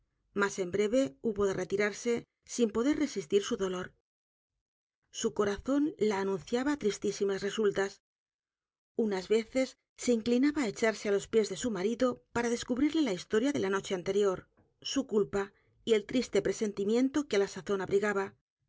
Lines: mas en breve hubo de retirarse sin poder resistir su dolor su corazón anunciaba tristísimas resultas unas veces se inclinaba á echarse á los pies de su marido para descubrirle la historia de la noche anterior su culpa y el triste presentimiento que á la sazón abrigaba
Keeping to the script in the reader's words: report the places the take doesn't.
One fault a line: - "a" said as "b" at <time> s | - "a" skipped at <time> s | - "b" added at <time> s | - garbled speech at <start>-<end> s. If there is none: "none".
- "la" added at 6.0 s